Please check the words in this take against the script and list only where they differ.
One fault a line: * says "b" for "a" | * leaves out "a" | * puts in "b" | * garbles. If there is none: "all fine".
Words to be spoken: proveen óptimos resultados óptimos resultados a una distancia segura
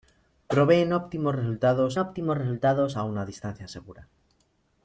all fine